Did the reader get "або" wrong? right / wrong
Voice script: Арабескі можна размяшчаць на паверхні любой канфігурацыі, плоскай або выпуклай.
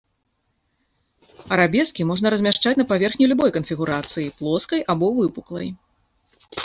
right